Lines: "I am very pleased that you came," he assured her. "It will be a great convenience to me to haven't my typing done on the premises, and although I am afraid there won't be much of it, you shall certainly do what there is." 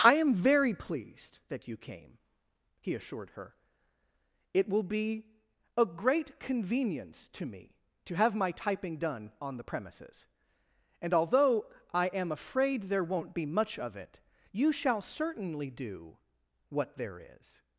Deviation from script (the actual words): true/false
true